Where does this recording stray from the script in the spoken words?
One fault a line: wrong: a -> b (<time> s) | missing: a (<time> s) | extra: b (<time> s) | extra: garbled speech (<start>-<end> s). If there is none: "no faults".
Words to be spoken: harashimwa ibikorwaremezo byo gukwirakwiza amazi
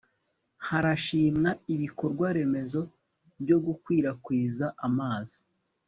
no faults